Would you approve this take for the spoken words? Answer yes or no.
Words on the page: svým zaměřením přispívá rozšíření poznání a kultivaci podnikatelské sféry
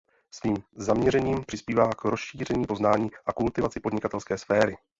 no